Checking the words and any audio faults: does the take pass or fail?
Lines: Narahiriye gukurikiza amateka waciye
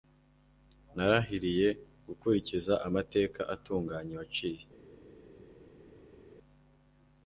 fail